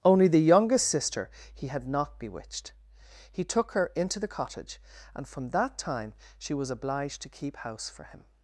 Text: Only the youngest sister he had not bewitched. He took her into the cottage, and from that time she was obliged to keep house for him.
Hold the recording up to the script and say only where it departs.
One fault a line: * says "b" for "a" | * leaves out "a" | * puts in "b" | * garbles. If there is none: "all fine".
all fine